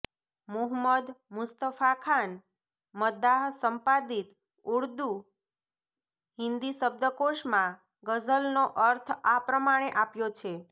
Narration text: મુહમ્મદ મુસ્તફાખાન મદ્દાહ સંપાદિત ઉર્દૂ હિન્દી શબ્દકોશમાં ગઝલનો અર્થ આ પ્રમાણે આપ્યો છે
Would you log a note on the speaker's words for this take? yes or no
no